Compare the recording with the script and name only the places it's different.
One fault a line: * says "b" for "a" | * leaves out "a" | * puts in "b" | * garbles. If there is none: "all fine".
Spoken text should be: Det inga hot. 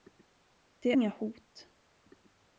all fine